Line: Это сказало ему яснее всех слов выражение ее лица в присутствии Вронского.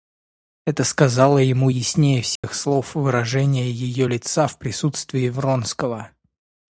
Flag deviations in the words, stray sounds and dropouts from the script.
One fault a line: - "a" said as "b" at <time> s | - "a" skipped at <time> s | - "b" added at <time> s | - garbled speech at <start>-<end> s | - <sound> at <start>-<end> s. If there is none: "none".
- dropout at 2.4-2.4 s